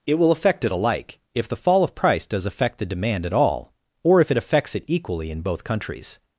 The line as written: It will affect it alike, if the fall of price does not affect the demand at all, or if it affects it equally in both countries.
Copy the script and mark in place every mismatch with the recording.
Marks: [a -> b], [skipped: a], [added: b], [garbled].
It will affect it alike, if the fall of price does [skipped: not] affect the demand at all, or if it affects it equally in both countries.